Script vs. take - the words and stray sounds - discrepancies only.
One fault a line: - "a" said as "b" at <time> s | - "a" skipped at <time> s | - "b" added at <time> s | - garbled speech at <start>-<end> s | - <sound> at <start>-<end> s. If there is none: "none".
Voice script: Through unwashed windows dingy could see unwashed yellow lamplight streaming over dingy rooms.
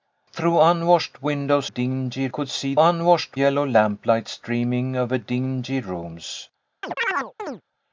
- chirp at 6.8-7.6 s